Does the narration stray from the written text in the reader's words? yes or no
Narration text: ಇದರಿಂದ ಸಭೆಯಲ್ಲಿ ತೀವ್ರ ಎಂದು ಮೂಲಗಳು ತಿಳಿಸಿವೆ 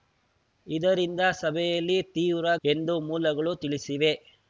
no